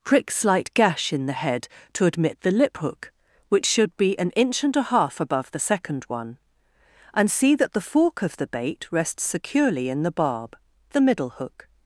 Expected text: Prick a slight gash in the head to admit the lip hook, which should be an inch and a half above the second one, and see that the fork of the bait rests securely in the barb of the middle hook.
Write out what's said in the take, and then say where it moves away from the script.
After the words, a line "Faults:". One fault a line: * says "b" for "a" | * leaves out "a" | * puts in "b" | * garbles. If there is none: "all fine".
Prick slight gash in the head to admit the lip hook, which should be an inch and a half above the second one, and see that the fork of the bait rests securely in the barb the middle hook.
Faults:
* leaves out "a"
* leaves out "of"